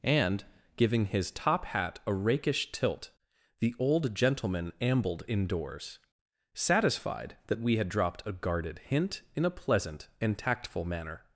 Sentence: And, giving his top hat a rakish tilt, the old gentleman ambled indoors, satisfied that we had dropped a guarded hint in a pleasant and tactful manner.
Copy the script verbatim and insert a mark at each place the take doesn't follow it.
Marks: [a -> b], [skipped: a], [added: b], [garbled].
And, giving his top hat a rakish tilt, the old gentleman ambled indoors, satisfied that we had dropped a guarded hint in a pleasant and tactful manner.